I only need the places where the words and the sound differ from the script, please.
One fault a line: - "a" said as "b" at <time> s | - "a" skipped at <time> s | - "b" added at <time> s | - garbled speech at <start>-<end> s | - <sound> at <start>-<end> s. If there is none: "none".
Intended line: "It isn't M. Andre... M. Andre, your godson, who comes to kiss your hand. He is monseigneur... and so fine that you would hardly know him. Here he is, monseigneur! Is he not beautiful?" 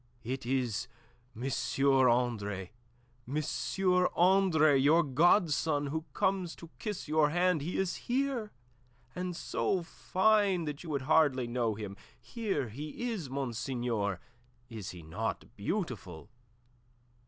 - "isn't" said as "is" at 0.5 s
- "monseigneur" said as "here" at 8.0 s